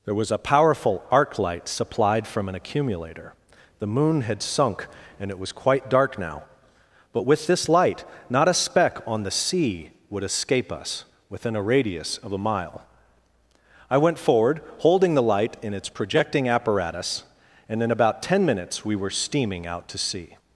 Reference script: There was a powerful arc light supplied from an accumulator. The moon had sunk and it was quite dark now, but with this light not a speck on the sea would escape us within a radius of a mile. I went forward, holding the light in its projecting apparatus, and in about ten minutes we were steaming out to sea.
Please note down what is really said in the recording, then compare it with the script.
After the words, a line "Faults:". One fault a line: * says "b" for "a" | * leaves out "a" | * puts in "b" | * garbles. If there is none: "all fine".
There was a powerful arc light supplied from an accumulator. The moon had sunk and it was quite dark now, but with this light not a speck on the sea would escape us within a radius of a mile. I went forward, holding the light in its projecting apparatus, and in about ten minutes we were steaming out to sea.
Faults:
all fine